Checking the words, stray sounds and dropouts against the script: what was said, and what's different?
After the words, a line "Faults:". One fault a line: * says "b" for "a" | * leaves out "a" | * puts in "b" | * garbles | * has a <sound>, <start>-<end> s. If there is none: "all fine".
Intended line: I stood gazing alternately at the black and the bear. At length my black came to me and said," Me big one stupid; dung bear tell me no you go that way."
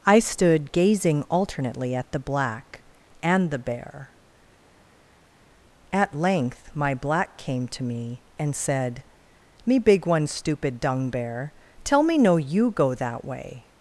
I stood gazing alternately at the black and the bear. At length my black came to me and said," Me big one stupid; dung bear tell me no you go that way."
Faults:
all fine